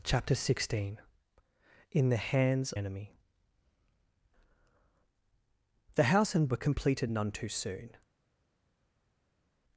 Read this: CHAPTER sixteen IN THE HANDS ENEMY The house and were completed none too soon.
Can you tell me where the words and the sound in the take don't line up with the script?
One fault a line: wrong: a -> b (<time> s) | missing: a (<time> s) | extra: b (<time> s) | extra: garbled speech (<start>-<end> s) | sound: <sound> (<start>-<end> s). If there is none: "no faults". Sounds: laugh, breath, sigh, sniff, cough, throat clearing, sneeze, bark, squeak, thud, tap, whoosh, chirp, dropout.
no faults